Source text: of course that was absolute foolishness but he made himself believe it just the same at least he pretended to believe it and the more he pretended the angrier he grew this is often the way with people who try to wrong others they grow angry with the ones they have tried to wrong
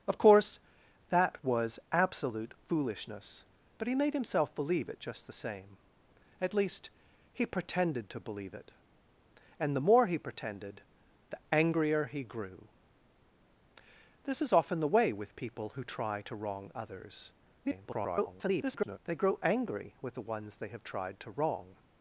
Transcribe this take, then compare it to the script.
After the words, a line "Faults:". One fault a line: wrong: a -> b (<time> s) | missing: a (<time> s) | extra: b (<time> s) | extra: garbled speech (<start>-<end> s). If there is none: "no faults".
of course that was absolute foolishness but he made himself believe it just the same at least he pretended to believe it and the more he pretended the angrier he grew this is often the way with people who try to wrong others [garbled] they grow angry with the ones they have tried to wrong
Faults:
extra: garbled speech (17.6-19.0 s)